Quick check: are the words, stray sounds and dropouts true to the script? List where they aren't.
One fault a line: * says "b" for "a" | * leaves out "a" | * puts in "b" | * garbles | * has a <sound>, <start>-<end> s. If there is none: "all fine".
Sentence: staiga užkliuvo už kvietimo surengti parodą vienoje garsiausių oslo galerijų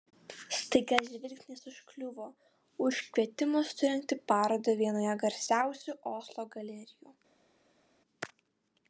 * puts in "žvilgsnis"